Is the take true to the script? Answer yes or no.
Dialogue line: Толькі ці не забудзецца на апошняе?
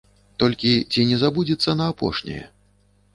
yes